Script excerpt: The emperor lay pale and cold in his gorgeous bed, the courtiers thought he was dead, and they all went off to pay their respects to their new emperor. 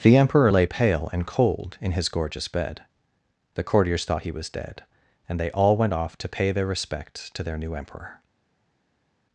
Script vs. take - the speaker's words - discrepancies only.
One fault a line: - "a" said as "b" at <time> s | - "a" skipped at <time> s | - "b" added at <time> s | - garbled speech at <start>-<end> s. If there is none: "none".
none